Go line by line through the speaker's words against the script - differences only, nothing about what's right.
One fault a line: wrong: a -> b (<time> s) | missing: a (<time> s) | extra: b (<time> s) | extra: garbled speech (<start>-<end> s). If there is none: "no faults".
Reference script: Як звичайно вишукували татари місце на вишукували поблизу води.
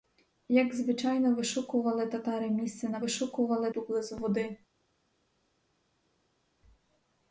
no faults